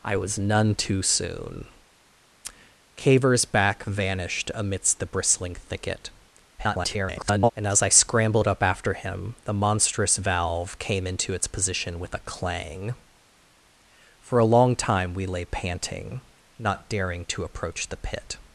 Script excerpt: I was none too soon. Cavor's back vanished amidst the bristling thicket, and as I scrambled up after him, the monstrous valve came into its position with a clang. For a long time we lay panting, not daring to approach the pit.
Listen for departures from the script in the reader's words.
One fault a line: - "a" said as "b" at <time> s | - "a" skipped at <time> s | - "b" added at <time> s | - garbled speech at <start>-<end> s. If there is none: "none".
- garbled speech at 6.6-7.5 s